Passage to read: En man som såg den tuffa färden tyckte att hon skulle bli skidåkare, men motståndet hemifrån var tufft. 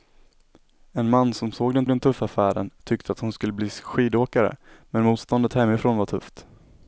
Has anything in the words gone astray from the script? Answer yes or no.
yes